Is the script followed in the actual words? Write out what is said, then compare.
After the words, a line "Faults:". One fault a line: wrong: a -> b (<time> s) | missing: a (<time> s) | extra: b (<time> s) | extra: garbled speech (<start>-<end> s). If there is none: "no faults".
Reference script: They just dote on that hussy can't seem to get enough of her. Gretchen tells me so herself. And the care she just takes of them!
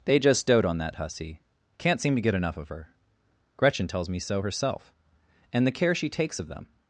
They just dote on that hussy can't seem to get enough of her. Gretchen tells me so herself. And the care she takes of them!
Faults:
missing: just (6.1 s)